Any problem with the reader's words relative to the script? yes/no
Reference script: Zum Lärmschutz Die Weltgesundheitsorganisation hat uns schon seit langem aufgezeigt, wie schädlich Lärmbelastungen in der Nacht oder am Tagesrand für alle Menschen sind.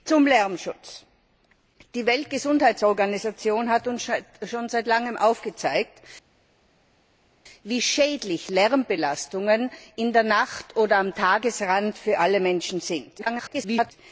yes